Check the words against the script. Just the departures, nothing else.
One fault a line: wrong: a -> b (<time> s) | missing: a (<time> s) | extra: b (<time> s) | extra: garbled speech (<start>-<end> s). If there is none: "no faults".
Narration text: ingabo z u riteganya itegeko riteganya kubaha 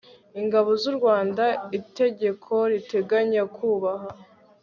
wrong: riteganya -> rwanda (1.0 s)